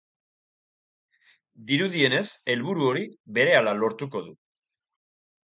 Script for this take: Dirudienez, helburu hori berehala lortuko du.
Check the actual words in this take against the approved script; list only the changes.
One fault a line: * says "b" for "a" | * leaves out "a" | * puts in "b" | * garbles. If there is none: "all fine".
all fine